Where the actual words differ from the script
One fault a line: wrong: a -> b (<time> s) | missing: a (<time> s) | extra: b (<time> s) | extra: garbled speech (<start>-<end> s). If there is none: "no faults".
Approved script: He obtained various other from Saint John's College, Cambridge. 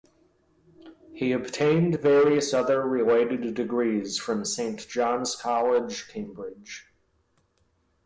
extra: related degrees (2.9 s)